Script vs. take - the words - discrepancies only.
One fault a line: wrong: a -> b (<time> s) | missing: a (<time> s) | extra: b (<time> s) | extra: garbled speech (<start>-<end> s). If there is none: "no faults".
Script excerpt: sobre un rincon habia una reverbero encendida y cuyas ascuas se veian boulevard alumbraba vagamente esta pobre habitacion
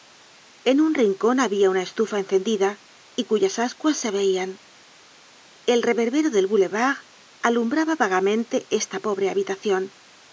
wrong: sobre -> en (0.6 s)
wrong: reverbero -> estufa (1.8 s)
extra: el reverbero del (5.6 s)